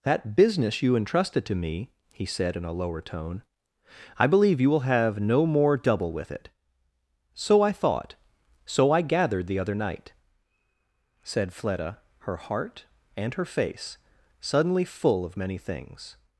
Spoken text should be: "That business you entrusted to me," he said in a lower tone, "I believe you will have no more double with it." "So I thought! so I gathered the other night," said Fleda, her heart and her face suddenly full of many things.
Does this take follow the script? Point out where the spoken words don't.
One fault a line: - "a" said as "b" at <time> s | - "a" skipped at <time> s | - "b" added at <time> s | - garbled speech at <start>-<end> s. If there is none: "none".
none